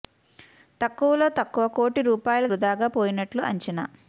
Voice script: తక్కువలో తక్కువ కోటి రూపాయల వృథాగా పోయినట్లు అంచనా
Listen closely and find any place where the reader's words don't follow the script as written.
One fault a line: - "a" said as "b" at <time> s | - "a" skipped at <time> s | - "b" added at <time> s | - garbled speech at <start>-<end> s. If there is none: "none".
none